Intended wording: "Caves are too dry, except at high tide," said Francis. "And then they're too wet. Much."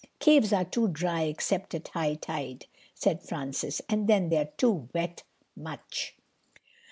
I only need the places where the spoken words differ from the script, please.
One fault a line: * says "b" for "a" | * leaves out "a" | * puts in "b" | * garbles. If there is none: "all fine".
all fine